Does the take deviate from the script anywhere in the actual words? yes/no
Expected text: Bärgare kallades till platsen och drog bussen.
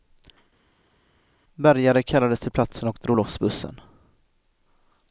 yes